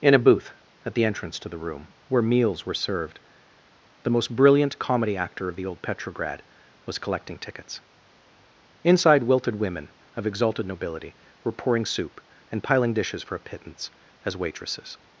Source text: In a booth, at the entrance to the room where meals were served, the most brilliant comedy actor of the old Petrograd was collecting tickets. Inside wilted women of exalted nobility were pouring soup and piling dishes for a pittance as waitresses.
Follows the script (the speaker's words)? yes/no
yes